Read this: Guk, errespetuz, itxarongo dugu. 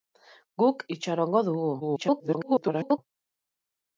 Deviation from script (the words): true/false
true